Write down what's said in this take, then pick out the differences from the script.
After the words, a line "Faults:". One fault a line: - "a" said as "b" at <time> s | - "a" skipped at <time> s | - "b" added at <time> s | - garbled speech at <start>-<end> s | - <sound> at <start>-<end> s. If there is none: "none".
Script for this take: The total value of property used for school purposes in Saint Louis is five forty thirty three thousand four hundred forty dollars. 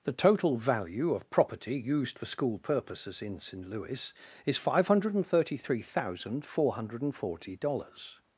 The total value of property used for school purposes in Saint Louis is five hundred thirty three thousand four hundred forty dollars.
Faults:
- "forty" said as "hundred" at 4.9 s